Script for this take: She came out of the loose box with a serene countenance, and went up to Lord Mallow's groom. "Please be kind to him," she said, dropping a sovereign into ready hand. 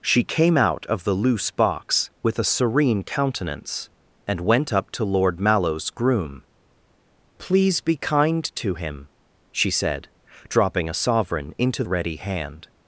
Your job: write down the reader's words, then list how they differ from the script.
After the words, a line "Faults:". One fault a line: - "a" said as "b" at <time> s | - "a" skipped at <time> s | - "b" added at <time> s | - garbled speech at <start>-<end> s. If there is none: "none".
She came out of the loose box with a serene countenance, and went up to Lord Mallow's groom. "Please be kind to him," she said, dropping a sovereign into ready hand.
Faults:
none